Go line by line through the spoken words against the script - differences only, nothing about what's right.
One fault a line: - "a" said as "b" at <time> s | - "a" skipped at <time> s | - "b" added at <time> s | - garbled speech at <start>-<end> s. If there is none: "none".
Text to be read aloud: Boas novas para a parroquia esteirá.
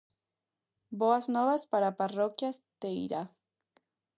none